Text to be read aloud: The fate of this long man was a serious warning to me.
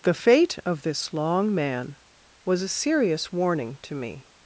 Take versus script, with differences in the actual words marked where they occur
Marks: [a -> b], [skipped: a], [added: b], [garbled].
The fate of this long man was a serious warning to me.